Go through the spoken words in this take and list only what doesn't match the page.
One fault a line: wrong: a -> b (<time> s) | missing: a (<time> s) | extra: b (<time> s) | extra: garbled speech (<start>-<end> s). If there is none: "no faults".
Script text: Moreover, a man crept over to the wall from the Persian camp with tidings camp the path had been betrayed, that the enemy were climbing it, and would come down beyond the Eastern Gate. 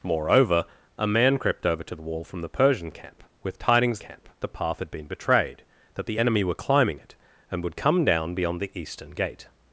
no faults